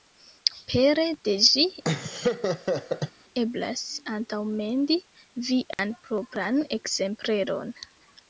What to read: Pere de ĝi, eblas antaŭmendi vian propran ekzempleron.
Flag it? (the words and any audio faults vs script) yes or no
yes